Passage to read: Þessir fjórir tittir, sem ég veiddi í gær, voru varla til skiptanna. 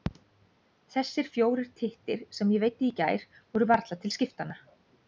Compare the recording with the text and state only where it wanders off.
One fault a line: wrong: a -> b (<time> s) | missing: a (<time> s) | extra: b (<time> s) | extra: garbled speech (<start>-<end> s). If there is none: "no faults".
no faults